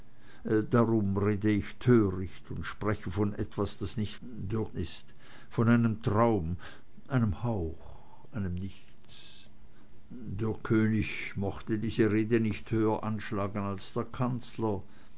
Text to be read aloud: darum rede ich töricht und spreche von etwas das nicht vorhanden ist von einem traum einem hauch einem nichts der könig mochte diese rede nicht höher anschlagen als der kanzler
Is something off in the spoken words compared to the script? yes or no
yes